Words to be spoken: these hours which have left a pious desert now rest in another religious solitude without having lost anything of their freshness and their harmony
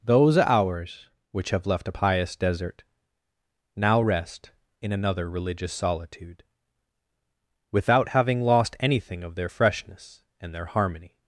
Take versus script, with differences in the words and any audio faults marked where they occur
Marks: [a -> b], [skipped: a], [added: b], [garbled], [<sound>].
[these -> those] hours which have left a pious desert now rest in another religious solitude without having lost anything of their freshness and their harmony